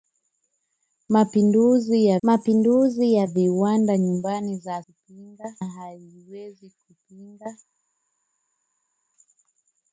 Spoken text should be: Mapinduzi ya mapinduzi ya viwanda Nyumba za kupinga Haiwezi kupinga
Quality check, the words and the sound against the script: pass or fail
pass